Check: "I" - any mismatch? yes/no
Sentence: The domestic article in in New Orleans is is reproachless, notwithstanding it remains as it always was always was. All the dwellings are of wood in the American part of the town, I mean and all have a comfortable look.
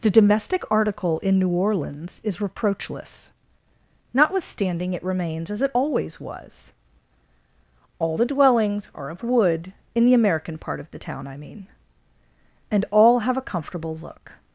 no